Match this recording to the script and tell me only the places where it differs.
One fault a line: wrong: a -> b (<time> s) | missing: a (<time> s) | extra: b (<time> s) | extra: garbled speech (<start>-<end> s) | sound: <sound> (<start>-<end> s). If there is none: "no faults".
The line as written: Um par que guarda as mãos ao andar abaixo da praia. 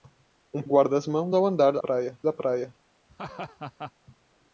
missing: par que (0.6 s)
wrong: abaixo -> praia (1.8 s)
sound: laugh (3.1-3.9 s)